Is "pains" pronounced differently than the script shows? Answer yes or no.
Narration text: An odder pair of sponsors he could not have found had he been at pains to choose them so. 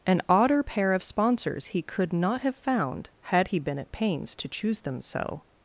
no